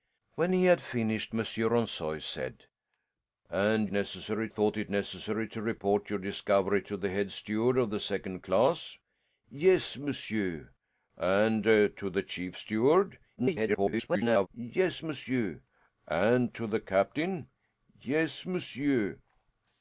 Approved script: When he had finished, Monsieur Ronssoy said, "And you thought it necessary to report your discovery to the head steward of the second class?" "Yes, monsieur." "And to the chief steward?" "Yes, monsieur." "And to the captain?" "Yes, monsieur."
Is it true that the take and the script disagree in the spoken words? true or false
true